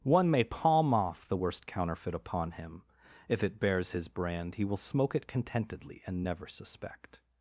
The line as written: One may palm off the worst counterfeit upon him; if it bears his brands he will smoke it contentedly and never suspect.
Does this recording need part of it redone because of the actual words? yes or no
yes